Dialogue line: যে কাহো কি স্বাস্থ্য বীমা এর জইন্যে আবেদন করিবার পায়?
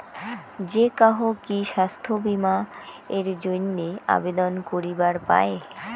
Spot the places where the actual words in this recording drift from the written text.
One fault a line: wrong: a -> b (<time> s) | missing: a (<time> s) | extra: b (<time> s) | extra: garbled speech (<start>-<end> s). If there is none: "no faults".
no faults